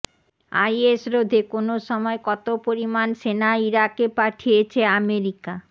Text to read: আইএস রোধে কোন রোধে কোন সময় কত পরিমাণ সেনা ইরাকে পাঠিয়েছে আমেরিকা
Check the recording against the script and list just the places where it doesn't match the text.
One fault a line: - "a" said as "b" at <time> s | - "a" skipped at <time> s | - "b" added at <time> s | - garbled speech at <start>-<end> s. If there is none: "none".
- "রোধে কোন" skipped at 1.7 s